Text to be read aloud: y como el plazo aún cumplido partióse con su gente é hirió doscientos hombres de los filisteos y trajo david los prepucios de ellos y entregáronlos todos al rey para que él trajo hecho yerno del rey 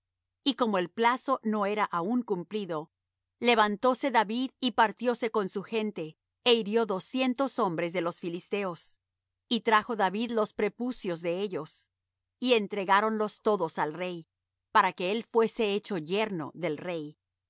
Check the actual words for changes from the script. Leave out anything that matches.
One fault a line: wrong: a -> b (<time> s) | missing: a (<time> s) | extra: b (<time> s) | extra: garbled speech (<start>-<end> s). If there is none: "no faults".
extra: no era (1.4 s)
extra: levantóse david y (3.4 s)
wrong: trajo -> fuese (15.2 s)